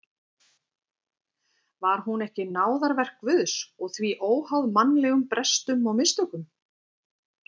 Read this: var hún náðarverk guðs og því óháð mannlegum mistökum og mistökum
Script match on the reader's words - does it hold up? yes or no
no